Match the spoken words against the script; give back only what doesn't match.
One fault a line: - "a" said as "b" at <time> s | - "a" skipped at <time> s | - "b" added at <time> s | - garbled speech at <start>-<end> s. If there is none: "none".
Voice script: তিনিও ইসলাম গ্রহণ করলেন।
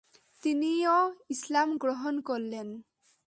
none